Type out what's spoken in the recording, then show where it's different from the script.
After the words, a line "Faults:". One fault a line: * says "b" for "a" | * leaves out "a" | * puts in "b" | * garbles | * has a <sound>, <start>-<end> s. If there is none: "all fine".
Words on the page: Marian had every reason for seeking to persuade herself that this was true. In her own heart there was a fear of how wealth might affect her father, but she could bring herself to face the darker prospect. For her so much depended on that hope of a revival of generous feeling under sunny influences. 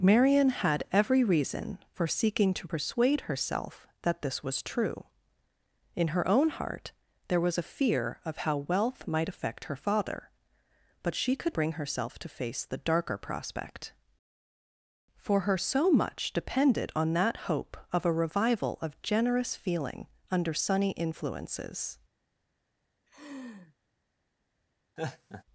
Marian had every reason for seeking to persuade herself that this was true. In her own heart there was a fear of how wealth might affect her father, but she could bring herself to face the darker prospect. For her so much depended on that hope of a revival of generous feeling under sunny influences.
Faults:
* has a laugh, 23.1-23.8 s
* has a laugh, 25.0-25.4 s